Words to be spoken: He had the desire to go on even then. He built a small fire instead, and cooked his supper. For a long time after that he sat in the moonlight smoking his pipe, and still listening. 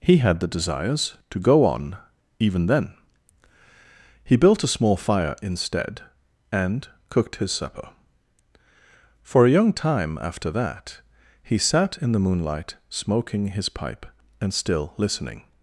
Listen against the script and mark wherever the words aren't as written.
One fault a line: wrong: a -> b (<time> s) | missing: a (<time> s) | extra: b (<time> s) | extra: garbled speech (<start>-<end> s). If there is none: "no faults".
wrong: desire -> desires (0.5 s)
wrong: long -> young (9.5 s)